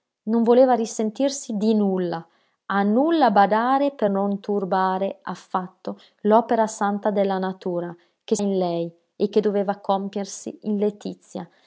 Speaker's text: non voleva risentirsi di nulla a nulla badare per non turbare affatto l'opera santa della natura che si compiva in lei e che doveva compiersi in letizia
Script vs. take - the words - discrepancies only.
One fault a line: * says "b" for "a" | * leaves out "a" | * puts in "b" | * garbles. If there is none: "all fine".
* leaves out "si compiva"